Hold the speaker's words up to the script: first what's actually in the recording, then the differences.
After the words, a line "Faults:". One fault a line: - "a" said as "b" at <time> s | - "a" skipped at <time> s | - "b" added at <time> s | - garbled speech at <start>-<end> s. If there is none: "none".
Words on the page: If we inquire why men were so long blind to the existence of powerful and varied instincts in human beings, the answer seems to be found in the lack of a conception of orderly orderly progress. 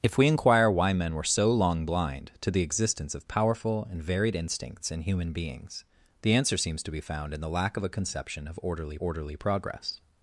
If we inquire why men were so long blind to the existence of powerful and varied instincts in human beings, the answer seems to be found in the lack of a conception of orderly orderly progress.
Faults:
none